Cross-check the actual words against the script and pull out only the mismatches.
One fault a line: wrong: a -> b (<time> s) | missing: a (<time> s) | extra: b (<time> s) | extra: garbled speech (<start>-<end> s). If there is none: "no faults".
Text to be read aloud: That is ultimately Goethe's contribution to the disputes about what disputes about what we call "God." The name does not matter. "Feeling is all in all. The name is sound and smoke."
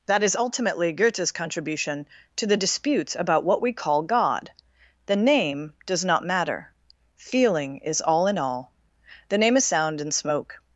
missing: disputes about what (3.6 s)